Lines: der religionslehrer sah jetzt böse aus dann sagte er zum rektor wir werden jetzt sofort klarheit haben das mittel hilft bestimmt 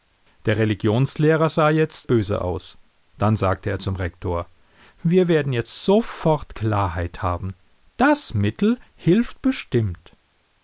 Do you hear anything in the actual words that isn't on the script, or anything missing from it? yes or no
no